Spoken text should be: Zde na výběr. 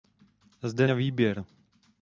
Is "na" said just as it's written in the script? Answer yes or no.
yes